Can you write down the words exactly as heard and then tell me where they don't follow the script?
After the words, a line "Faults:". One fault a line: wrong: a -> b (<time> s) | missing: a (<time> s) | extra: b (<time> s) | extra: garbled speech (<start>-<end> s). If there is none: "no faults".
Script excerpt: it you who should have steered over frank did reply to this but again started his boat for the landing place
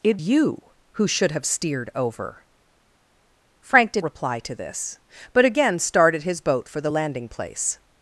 it you who should have steered over frank did reply to this but again started his boat for the landing place
Faults:
no faults